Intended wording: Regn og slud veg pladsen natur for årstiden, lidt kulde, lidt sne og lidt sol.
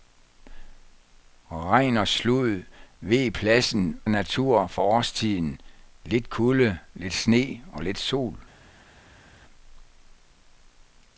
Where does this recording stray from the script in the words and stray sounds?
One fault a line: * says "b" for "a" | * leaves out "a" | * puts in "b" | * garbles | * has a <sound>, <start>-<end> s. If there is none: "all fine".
all fine